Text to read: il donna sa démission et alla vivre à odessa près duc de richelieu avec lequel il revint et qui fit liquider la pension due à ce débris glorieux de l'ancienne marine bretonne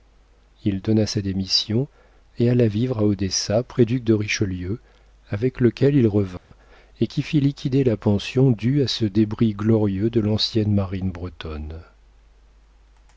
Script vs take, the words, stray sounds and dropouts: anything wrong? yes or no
yes